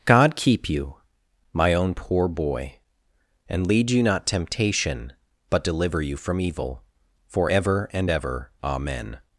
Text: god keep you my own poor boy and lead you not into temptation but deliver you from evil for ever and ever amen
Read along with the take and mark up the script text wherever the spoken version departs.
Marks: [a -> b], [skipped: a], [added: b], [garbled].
god keep you my own poor boy and lead you not [skipped: into] temptation but deliver you from evil for ever and ever amen